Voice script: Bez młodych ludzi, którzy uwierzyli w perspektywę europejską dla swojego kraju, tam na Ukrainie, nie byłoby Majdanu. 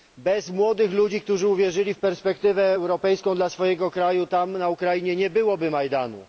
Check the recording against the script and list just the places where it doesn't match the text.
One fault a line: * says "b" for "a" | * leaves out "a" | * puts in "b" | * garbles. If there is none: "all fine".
all fine